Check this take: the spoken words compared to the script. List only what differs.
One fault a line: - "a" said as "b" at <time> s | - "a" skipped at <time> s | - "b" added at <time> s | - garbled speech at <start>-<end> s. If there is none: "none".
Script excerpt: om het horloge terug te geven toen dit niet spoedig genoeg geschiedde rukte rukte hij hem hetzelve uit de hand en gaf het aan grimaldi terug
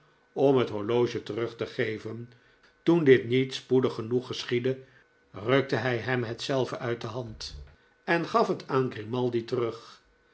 - "rukte" skipped at 5.8 s